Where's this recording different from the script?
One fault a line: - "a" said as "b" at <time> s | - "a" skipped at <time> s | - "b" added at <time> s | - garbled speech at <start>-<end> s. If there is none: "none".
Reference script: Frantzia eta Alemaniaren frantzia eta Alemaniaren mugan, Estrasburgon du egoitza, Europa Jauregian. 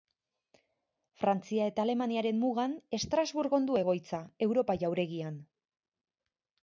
- "frantzia eta Alemaniaren" skipped at 2.4 s